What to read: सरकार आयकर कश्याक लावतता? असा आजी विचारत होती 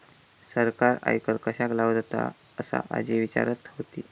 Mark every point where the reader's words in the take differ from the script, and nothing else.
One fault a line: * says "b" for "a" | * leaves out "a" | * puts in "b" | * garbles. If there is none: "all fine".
all fine